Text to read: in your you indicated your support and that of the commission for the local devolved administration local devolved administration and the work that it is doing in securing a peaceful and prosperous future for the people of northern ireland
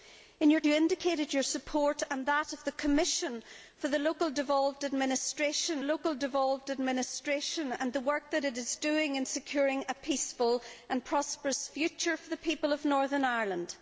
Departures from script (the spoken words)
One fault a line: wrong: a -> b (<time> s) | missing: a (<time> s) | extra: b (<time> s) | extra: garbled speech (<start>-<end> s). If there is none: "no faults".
no faults